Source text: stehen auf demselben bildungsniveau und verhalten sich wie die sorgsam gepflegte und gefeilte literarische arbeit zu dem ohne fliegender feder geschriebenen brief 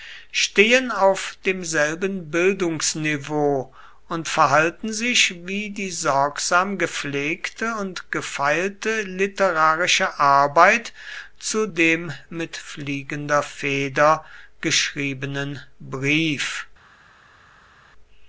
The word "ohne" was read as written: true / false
false